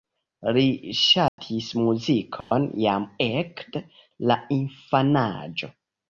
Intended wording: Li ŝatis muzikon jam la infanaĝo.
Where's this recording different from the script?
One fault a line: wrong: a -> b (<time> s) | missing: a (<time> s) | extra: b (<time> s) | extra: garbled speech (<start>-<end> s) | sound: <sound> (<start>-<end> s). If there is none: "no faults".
sound: dropout (1.3-1.4 s)
sound: dropout (2.4-2.5 s)
extra: ekde (3.2 s)